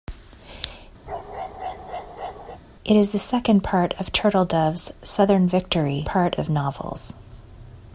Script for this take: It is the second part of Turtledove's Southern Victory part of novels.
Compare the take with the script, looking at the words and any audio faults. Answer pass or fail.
fail